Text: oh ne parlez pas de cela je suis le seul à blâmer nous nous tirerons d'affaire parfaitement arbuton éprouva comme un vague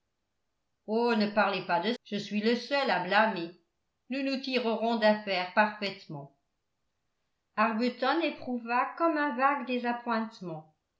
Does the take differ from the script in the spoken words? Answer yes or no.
yes